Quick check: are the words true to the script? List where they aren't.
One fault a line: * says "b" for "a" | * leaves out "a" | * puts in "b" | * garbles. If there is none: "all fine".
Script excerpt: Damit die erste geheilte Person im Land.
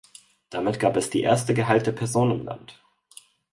* puts in "gab es"